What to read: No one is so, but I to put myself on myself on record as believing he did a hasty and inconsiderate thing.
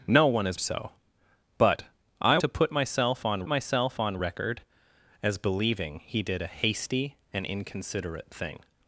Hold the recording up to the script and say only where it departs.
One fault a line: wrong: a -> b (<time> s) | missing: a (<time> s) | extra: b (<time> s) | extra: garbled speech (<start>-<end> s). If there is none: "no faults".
no faults